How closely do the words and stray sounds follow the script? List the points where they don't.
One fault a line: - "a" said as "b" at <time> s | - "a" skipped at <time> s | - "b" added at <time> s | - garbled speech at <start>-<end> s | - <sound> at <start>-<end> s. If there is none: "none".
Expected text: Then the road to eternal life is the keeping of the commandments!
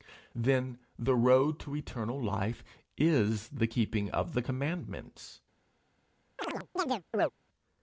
- chirp at 6.4-7.3 s